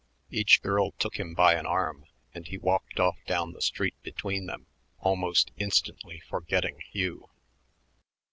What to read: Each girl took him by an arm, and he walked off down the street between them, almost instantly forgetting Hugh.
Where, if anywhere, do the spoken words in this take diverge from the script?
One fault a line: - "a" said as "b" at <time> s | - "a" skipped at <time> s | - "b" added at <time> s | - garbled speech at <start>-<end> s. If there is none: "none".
none